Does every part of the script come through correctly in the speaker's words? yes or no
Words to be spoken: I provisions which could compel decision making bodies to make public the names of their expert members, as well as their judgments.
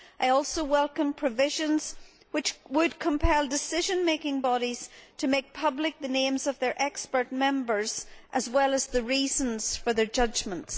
no